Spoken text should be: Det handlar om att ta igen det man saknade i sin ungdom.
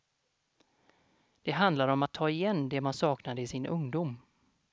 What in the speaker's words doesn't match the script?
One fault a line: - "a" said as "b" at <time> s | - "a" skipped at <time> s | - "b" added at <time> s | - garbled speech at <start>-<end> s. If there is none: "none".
none